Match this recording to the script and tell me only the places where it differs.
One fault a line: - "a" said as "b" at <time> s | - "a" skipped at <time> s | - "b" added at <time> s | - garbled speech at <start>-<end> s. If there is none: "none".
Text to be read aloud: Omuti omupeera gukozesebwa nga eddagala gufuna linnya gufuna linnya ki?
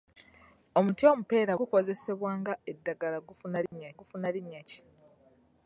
none